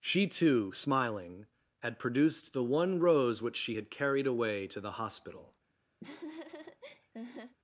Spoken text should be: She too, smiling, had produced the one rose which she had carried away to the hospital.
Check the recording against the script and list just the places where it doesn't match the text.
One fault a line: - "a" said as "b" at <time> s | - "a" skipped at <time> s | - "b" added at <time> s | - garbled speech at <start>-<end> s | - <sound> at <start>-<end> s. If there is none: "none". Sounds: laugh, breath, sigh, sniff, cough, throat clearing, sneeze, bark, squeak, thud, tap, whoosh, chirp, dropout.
- laugh at 6.0-7.6 s